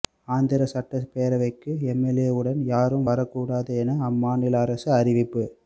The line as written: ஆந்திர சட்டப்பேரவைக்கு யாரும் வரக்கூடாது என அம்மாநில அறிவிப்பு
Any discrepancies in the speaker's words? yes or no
yes